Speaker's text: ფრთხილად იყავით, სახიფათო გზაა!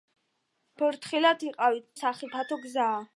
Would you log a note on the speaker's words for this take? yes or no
no